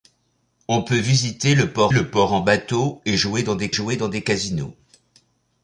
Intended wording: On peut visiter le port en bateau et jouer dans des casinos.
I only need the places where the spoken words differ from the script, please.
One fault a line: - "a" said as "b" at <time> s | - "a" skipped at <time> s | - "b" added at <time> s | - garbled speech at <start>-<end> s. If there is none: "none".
- "le port" added at 1.9 s
- "jouer dans des" added at 3.7 s